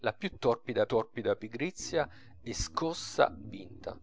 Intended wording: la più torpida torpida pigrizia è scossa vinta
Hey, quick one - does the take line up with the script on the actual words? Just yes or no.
yes